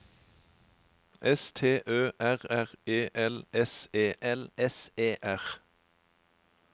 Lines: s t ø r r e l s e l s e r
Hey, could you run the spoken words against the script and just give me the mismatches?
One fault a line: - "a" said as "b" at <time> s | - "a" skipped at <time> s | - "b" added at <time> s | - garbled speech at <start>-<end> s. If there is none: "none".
none